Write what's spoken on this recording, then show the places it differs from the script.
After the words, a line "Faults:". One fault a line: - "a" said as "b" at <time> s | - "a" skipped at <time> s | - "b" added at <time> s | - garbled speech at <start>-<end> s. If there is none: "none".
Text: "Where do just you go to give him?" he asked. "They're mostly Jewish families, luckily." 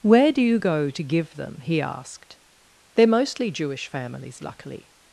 "Where do you go to give them?" he asked. "They're mostly Jewish families, luckily."
Faults:
- "just" skipped at 0.4 s
- "him" said as "them" at 1.3 s